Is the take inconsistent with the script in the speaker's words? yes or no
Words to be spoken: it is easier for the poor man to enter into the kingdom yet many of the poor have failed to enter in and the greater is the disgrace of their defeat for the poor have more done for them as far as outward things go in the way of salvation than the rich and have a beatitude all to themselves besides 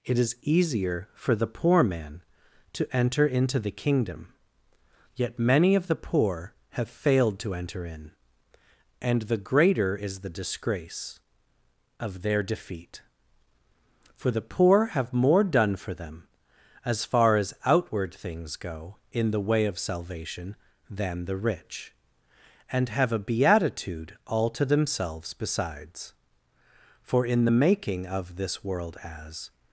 yes